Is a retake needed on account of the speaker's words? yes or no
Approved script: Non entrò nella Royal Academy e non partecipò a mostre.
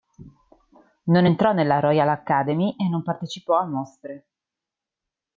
no